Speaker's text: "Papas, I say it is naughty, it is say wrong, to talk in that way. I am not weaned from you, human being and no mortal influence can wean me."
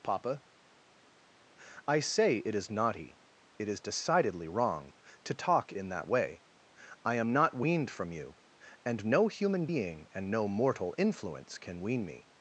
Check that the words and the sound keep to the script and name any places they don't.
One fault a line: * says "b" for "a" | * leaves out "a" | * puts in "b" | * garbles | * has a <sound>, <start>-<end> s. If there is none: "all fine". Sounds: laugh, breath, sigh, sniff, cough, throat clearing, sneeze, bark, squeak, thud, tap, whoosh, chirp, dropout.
* says "Papa" for "Papas"
* says "decidedly" for "say"
* puts in "and no"